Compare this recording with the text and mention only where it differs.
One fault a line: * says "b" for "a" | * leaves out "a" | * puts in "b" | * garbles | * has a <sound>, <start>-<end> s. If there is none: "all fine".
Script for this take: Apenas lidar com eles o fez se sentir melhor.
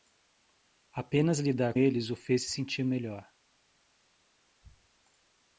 * leaves out "com"